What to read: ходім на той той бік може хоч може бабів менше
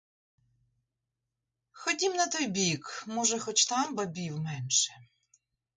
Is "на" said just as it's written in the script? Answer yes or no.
yes